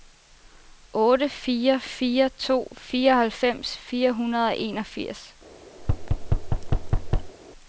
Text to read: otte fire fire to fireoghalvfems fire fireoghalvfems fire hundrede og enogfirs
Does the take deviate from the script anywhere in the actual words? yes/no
yes